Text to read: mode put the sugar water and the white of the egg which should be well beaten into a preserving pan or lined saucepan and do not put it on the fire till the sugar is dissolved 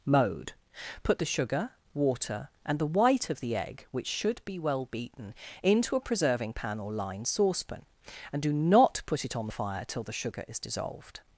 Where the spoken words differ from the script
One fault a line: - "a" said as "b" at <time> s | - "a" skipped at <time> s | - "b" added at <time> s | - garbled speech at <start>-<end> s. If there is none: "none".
none